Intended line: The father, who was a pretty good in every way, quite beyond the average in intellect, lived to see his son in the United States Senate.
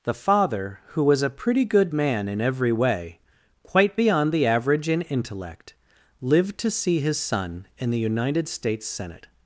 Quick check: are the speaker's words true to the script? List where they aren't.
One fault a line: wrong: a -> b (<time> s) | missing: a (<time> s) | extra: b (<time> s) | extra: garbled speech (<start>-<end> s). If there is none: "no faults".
extra: man (1.9 s)